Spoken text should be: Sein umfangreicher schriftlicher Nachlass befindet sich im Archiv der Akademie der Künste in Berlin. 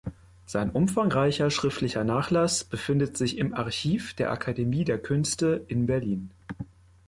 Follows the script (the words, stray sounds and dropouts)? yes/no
yes